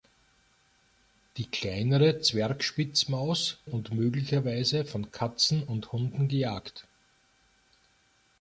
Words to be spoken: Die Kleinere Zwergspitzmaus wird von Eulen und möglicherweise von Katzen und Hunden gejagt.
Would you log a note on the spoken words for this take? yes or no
yes